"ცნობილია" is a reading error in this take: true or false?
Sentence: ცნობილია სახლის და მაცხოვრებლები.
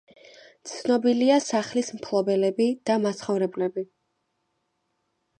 false